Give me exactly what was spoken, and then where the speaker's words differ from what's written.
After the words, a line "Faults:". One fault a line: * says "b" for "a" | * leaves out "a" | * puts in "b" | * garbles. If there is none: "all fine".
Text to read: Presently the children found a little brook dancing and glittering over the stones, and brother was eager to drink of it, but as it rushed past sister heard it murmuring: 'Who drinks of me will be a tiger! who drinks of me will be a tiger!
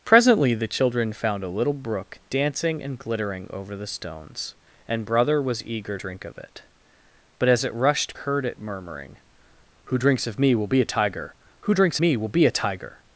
Presently the children found a little brook dancing and glittering over the stones, and brother was eager drink of it, but as it rushed heard it murmuring: 'Who drinks of me will be a tiger! who drinks me will be a tiger!
Faults:
* leaves out "to"
* leaves out "past sister"
* leaves out "of"